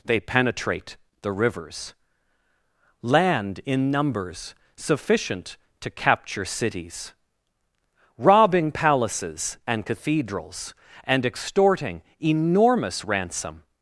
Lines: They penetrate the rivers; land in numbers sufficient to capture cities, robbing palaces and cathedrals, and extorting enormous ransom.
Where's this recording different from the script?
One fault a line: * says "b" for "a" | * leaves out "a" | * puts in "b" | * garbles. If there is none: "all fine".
all fine